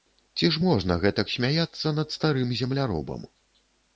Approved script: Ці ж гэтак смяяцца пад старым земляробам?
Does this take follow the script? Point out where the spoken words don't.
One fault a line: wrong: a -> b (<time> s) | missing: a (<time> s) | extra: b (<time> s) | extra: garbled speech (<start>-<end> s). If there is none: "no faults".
extra: можна (0.6 s)
wrong: пад -> над (2.0 s)